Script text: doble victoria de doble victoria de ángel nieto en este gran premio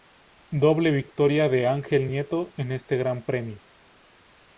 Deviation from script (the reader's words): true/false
true